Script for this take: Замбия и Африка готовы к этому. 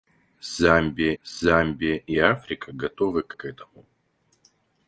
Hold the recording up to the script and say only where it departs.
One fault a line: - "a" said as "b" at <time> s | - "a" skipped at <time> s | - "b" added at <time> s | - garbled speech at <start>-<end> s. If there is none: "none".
- "замбия" added at 1.2 s
- "к" added at 3.3 s